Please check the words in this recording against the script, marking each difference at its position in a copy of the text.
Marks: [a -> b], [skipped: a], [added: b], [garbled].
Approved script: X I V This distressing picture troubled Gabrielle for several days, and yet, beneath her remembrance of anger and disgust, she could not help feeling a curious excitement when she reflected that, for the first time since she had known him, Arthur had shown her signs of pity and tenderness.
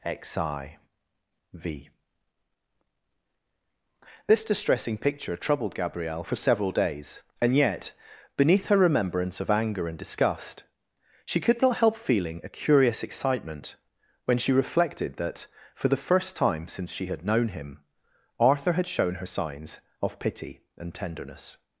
X I V This distressing picture troubled Gabrielle for several days, and yet, beneath her remembrance of anger and disgust, she could not help feeling a curious excitement when she reflected that, for the first time since she had known him, Arthur had shown her signs of pity and tenderness.